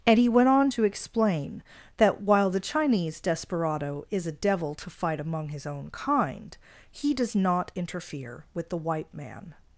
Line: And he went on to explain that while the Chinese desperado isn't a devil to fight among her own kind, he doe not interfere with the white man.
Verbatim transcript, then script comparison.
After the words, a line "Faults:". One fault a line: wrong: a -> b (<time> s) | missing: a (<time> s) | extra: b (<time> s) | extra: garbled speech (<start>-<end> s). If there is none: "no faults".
And he went on to explain that while the Chinese desperado is a devil to fight among his own kind, he does not interfere with the white man.
Faults:
wrong: isn't -> is (4.1 s)
wrong: her -> his (5.5 s)
wrong: doe -> does (7.1 s)